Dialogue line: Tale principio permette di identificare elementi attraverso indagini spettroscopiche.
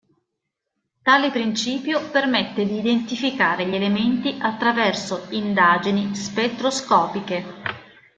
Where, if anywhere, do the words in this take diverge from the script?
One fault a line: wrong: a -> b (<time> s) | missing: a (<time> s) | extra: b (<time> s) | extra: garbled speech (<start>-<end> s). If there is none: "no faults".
extra: gli (3.7 s)